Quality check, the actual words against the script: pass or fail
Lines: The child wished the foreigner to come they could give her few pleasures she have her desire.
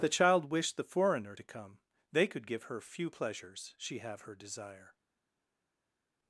pass